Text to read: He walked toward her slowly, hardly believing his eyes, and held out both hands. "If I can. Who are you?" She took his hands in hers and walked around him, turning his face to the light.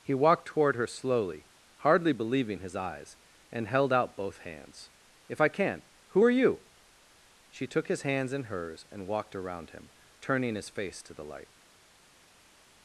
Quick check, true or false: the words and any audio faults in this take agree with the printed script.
true